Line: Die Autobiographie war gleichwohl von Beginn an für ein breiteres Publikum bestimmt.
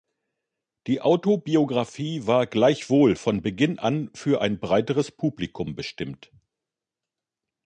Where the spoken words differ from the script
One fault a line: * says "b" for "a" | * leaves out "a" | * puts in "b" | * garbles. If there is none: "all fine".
all fine